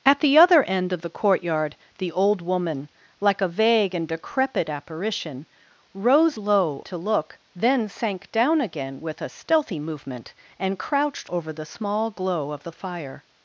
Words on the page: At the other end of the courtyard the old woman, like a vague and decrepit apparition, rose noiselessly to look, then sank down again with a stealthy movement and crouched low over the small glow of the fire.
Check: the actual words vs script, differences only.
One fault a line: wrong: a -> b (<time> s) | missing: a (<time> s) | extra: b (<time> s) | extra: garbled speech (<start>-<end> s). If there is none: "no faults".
wrong: noiselessly -> low (6.4 s)
missing: low (11.3 s)